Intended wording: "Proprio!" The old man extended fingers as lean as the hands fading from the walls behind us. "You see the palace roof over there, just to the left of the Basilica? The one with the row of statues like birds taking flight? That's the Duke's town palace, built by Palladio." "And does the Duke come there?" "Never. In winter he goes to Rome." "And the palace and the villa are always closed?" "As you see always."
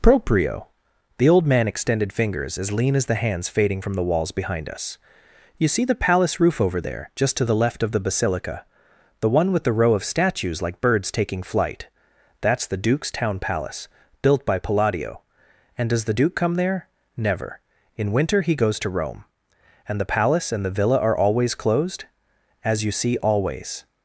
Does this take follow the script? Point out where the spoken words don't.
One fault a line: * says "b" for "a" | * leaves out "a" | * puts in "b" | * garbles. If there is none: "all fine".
all fine